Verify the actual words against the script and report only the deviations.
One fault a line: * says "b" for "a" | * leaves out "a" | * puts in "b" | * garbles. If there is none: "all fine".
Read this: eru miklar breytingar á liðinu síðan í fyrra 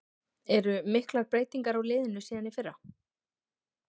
all fine